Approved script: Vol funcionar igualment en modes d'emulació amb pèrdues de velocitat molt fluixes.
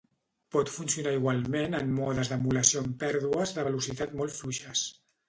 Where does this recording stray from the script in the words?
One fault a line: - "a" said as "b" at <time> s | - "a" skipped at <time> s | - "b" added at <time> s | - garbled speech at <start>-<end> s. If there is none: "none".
- "Vol" said as "Pot" at 0.5 s